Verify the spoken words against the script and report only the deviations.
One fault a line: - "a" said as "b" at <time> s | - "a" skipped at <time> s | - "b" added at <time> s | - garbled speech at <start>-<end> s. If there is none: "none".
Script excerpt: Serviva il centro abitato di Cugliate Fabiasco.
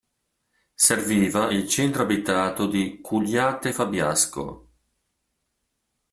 none